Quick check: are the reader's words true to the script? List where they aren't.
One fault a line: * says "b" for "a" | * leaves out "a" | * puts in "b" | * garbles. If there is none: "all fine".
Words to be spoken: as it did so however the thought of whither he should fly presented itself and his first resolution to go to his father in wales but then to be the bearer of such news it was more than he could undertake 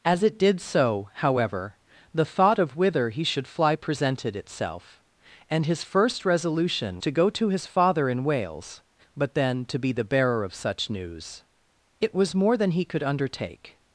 all fine